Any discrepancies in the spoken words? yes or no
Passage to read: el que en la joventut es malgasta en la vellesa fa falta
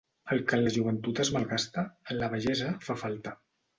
no